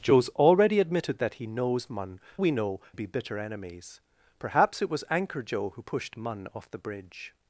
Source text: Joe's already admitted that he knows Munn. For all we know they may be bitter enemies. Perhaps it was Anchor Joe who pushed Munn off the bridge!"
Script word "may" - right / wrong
wrong